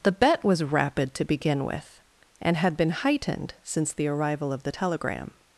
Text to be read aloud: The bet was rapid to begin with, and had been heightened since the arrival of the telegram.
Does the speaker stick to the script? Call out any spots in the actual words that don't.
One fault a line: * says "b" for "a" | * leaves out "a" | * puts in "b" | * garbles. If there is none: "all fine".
all fine